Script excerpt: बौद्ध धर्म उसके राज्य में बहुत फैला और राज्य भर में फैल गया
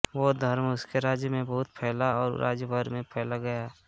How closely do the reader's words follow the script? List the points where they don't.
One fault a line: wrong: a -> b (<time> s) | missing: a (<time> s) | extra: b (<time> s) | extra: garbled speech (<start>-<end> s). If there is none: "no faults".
no faults